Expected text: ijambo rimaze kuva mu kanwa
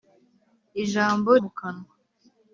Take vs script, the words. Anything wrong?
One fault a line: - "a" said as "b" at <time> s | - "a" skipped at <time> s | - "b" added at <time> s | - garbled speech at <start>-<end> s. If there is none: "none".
- "rimaze kuva" skipped at 1.3 s